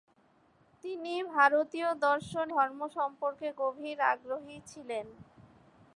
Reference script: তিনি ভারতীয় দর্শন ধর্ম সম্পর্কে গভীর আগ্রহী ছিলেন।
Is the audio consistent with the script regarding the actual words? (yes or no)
yes